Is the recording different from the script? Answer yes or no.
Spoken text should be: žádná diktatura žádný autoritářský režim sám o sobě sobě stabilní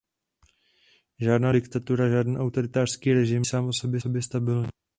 no